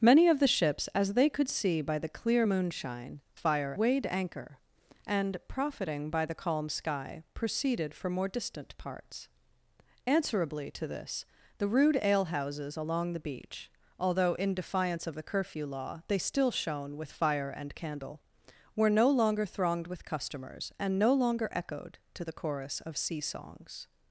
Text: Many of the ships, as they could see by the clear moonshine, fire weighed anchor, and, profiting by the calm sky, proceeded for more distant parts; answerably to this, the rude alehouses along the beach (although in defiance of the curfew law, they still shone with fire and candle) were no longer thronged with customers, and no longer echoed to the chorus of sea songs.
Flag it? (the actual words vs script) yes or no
no